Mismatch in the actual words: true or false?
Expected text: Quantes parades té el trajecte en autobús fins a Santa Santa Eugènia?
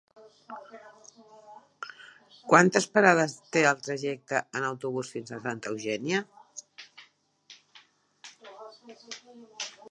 true